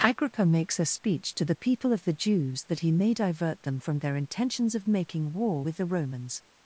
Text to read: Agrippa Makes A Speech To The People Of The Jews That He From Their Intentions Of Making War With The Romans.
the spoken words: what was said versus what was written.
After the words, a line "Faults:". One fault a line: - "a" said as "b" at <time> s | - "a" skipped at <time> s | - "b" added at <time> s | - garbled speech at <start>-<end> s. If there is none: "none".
Agrippa Makes A Speech To The People Of The Jews That He May Divert Them From Their Intentions Of Making War With The Romans.
Faults:
- "May Divert Them" added at 2.9 s